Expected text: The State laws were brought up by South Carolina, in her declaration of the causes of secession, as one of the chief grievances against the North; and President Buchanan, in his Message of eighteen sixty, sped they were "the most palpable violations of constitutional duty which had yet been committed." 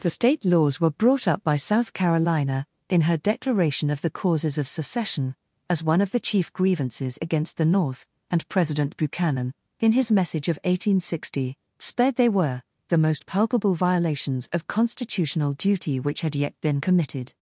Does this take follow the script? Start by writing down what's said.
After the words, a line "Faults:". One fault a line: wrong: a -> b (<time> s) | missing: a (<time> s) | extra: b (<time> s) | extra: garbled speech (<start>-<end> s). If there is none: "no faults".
The State laws were brought up by South Carolina, in her declaration of the causes of secession, as one of the chief grievances against the North; and President Buchanan, in his Message of eighteen sixty, sped they were "the most palpable violations of constitutional duty which had yet been committed."
Faults:
no faults